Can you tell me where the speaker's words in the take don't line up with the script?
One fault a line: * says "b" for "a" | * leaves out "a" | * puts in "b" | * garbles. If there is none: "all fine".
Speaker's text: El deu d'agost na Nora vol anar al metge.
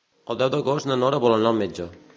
all fine